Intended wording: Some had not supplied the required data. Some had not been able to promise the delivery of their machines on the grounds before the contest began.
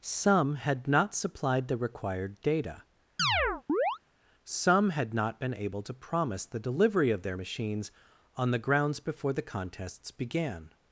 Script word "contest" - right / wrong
wrong